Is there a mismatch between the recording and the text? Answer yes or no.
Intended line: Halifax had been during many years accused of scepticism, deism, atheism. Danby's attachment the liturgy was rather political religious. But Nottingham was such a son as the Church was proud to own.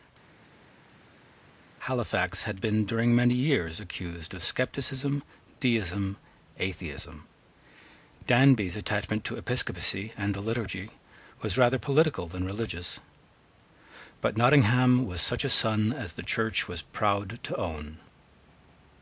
yes